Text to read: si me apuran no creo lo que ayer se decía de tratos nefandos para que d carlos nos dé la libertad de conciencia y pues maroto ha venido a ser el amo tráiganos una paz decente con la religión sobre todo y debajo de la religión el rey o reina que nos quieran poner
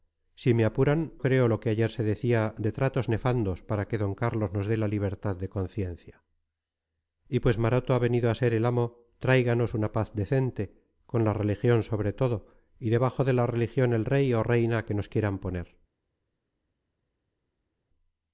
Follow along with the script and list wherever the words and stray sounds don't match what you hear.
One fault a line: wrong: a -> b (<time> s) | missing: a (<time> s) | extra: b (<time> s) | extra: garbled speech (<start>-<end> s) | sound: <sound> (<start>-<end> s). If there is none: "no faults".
missing: no (1.1 s)